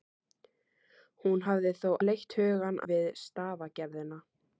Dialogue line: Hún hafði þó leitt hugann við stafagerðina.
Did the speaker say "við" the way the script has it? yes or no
yes